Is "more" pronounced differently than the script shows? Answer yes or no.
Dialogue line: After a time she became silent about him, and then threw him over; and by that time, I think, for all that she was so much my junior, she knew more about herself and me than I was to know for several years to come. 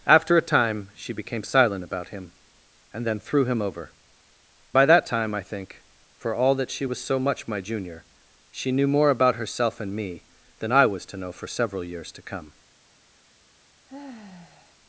no